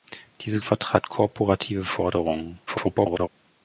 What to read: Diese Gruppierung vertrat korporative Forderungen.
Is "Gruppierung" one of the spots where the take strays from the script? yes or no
yes